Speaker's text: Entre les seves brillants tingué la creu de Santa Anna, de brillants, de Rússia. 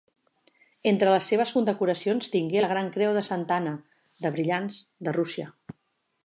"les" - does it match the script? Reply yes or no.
yes